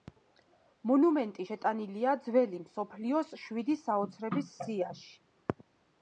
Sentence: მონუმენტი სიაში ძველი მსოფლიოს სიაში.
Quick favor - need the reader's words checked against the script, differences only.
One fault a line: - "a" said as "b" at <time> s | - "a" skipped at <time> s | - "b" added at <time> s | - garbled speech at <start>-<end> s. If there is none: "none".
- "სიაში" said as "შეტანილია" at 1.5 s
- "შვიდი საოცრების" added at 3.5 s